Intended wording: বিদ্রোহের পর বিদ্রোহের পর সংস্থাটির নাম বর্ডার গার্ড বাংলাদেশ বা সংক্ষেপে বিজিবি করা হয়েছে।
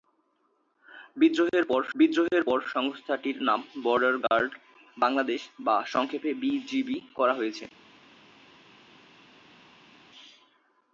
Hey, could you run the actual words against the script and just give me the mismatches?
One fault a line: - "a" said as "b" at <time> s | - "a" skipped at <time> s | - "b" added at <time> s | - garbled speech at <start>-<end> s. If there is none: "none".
none